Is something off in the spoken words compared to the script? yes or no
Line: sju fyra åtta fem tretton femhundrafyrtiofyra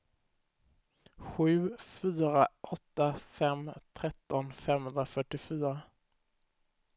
no